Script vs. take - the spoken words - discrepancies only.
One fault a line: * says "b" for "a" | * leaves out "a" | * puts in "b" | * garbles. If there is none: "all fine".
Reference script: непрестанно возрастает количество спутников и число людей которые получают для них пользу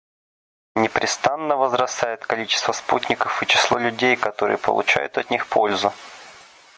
* says "от" for "для"